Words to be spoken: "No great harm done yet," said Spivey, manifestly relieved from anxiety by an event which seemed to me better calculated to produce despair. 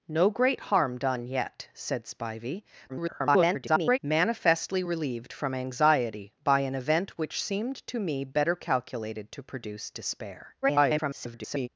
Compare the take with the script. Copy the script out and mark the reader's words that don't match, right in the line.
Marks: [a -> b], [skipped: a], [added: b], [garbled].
"No great harm done yet," said Spivey, [garbled] manifestly relieved from anxiety by an event which seemed to me better calculated to produce despair. [garbled]